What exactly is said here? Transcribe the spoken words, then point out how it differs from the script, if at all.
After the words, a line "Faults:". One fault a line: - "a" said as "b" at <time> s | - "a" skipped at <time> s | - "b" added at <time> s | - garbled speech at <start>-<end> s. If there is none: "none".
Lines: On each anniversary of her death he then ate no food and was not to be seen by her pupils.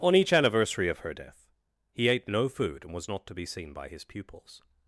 On each anniversary of her death he ate no food and was not to be seen by his pupils.
Faults:
- "then" skipped at 2.1 s
- "her" said as "his" at 3.9 s